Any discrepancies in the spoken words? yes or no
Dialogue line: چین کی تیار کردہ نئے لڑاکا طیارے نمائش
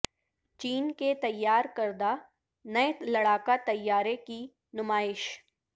yes